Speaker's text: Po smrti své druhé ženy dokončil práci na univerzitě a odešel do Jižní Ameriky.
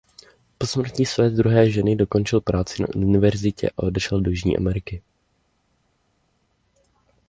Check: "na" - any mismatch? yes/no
no